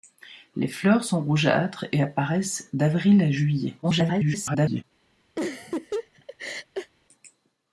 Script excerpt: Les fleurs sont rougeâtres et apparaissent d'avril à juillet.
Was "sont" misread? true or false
false